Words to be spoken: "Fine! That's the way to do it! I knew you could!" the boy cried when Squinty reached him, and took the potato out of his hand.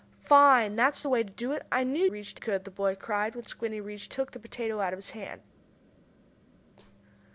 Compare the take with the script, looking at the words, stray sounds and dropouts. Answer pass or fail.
fail